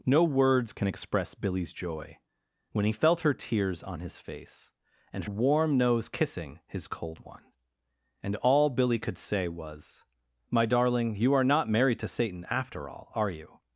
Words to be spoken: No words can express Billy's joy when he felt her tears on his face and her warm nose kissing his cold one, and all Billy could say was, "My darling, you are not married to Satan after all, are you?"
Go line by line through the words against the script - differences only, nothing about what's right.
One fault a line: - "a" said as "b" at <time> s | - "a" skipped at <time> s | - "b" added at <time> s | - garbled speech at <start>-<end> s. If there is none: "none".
- "her" skipped at 5.3 s